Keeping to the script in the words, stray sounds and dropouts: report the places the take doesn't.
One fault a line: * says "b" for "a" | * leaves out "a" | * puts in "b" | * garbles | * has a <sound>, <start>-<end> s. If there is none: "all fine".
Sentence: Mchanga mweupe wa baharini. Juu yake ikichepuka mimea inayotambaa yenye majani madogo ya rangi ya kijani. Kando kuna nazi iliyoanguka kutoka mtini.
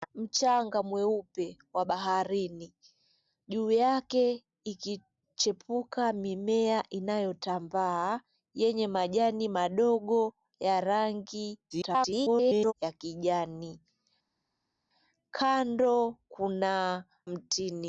* garbles
* leaves out "nazi iliyoanguka kutoka"